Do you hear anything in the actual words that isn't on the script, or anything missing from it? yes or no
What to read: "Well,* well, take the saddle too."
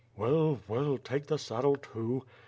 no